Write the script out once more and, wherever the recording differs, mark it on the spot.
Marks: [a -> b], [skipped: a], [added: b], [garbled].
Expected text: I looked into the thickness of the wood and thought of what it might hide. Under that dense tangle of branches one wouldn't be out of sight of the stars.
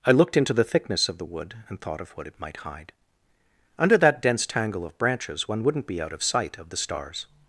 I looked into the thickness of the wood and thought of what it might hide. Under that dense tangle of branches one wouldn't be out of sight of the stars.